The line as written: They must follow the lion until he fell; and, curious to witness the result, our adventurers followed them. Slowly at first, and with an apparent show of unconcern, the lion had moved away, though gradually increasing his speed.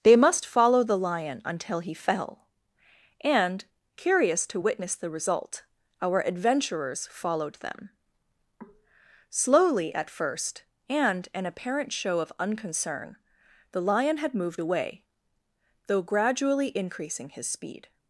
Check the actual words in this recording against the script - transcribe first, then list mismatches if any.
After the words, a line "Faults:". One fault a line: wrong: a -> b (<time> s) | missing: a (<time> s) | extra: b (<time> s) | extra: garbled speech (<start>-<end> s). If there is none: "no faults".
They must follow the lion until he fell; and, curious to witness the result, our adventurers followed them. Slowly at first, and an apparent show of unconcern, the lion had moved away, though gradually increasing his speed.
Faults:
missing: with (11.3 s)